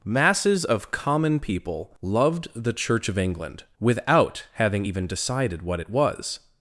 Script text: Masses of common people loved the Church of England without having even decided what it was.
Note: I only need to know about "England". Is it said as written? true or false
true